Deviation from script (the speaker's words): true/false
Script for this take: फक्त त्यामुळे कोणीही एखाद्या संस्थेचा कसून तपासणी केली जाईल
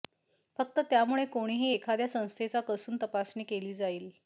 false